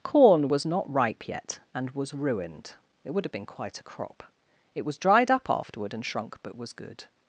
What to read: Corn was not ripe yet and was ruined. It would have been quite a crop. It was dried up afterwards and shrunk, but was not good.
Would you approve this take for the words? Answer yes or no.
no